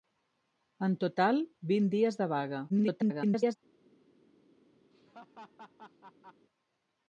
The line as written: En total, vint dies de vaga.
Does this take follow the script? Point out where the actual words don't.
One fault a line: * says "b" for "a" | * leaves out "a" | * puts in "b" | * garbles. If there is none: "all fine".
* garbles